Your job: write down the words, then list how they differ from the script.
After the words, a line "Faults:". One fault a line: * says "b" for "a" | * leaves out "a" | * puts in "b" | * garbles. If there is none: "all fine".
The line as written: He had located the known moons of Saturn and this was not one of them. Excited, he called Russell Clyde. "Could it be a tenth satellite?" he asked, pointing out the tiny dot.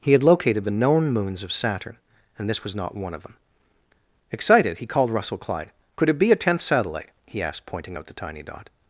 He had located the known moons of Saturn and this was not one of them. Excited, he called Russell Clyde. "Could it be a tenth satellite?" he asked, pointing out the tiny dot.
Faults:
all fine